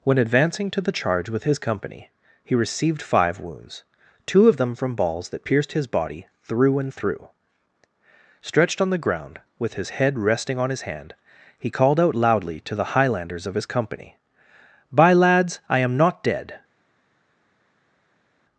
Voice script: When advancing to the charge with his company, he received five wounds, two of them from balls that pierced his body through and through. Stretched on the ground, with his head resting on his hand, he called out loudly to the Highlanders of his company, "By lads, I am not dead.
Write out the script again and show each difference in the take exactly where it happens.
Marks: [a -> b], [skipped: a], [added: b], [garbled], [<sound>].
When advancing to the charge with his company, he received five wounds, two of them from balls that pierced his body through and through. Stretched on the ground, with his head resting on his hand, he called out loudly to the Highlanders of his company, "By lads, I am not dead.